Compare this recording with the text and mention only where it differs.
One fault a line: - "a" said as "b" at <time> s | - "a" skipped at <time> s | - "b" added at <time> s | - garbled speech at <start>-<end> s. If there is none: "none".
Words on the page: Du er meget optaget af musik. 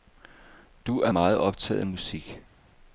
none